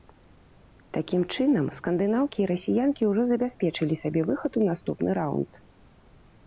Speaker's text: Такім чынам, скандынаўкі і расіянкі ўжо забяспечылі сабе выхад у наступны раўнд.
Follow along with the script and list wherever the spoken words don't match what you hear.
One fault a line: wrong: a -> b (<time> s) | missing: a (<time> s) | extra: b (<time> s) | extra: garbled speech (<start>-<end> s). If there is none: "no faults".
no faults